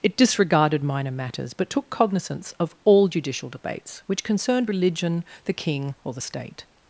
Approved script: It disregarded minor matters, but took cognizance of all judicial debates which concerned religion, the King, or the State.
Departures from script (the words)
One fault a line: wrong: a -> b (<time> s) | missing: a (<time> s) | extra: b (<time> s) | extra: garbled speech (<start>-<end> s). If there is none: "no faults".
no faults